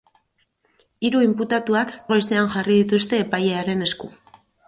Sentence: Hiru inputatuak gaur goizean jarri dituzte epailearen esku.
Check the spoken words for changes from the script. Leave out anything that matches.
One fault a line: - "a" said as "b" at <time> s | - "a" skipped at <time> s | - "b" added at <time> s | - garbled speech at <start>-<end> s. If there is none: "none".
- "gaur" skipped at 1.9 s